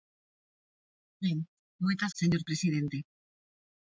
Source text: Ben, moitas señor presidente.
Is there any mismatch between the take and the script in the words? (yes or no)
no